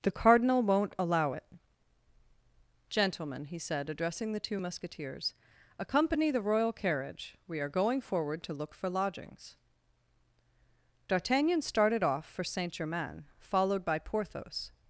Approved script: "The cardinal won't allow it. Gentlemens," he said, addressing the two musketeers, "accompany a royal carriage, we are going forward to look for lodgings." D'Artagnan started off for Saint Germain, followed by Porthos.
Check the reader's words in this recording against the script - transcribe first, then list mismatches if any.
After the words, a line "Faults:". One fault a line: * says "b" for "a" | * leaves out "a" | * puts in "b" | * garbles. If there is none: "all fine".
"The cardinal won't allow it. Gentlemen," he said, addressing the two musketeers, "accompany the royal carriage, we are going forward to look for lodgings." D'Artagnan started off for Saint Germain, followed by Porthos.
Faults:
* says "Gentlemen" for "Gentlemens"
* says "the" for "a"